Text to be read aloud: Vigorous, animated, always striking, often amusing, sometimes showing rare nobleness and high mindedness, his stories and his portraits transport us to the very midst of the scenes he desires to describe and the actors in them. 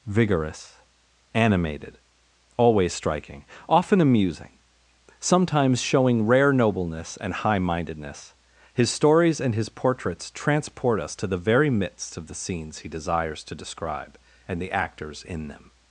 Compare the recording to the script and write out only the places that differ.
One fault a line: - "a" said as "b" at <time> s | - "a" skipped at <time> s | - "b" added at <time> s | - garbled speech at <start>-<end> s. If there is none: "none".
none